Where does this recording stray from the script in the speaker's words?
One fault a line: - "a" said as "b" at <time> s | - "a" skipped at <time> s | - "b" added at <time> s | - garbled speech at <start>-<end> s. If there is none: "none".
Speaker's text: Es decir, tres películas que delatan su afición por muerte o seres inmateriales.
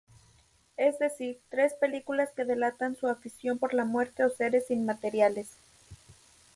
- "la" added at 3.7 s